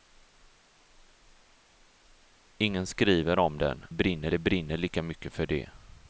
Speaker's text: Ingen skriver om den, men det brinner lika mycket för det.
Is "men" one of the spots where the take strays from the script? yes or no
yes